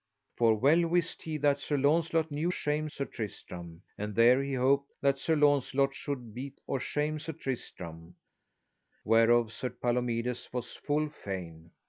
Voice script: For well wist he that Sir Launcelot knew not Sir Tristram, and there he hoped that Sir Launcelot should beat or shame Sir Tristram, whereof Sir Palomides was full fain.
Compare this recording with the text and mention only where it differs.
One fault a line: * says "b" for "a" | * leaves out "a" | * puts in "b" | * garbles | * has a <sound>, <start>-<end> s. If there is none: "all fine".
* says "shame" for "not"